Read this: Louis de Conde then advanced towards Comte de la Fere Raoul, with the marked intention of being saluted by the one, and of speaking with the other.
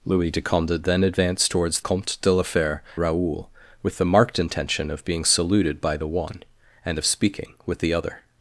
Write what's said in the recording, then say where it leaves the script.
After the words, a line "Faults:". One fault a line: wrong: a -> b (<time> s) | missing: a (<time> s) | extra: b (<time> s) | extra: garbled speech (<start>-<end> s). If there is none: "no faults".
Louis de Conde then advanced towards Comte de la Fere Raoul, with the marked intention of being saluted by the one, and of speaking with the other.
Faults:
no faults